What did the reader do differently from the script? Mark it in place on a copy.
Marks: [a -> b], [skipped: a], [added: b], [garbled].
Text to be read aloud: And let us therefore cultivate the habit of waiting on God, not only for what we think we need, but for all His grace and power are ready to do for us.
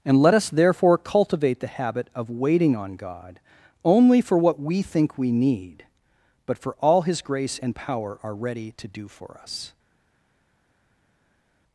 And let us therefore cultivate the habit of waiting on God, [skipped: not] only for what we think we need, but for all His grace and power are ready to do for us.